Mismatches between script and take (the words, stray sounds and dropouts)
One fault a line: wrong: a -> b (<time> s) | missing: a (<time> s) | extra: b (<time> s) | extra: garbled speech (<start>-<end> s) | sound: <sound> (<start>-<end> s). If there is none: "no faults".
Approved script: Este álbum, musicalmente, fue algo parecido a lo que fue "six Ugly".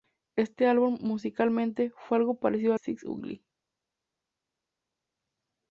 missing: lo que fue (2.8 s)